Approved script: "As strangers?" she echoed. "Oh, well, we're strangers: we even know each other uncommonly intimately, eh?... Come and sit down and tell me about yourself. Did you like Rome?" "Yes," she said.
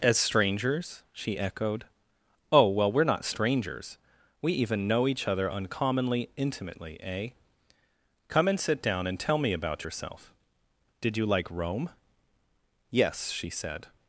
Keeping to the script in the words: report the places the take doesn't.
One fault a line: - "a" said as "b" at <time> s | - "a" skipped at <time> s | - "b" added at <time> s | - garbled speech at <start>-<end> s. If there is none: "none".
- "not" added at 3.0 s